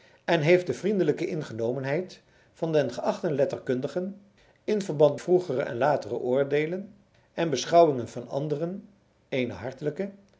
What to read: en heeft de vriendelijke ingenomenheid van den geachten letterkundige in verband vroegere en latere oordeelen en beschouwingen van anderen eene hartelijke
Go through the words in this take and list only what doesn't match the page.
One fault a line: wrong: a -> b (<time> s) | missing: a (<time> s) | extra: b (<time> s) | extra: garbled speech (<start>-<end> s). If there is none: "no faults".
no faults